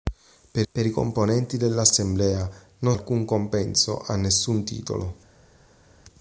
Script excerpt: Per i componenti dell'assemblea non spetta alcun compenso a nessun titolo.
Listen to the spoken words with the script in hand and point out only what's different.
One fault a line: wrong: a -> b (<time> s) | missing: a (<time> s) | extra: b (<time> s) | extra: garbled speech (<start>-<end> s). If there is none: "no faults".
extra: per (0.7 s)
missing: spetta (2.9 s)